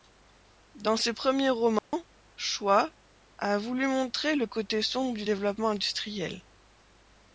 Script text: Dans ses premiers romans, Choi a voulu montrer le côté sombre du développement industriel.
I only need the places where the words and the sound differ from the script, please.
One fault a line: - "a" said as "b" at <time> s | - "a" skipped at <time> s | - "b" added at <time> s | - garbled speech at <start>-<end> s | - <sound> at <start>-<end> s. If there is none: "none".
- dropout at 1.8-1.9 s